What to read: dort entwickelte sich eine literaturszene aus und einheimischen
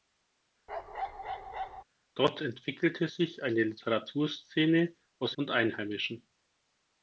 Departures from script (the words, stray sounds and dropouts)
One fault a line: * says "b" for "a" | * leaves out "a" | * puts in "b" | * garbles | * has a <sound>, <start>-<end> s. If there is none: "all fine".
* has a bark, 0.7-1.8 s